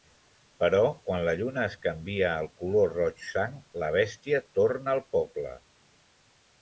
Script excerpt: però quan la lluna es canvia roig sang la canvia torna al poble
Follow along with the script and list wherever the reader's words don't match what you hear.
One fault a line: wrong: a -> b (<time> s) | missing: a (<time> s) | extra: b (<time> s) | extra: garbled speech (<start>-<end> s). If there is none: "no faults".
extra: al color (2.4 s)
wrong: canvia -> bèstia (4.0 s)